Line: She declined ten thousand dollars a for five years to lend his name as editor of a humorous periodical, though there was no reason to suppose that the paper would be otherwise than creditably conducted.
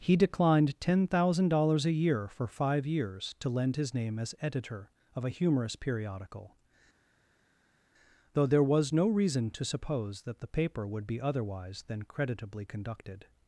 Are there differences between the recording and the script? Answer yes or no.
yes